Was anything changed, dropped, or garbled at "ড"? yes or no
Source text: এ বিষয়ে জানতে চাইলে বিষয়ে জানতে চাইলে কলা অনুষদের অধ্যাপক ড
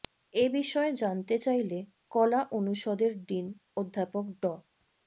no